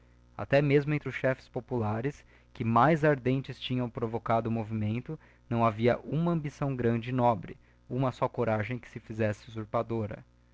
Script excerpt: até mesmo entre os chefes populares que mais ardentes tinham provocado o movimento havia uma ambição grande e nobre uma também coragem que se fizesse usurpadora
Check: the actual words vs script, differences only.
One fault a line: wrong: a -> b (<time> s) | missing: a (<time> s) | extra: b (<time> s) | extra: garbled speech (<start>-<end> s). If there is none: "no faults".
extra: não (5.5 s)
wrong: também -> só (8.1 s)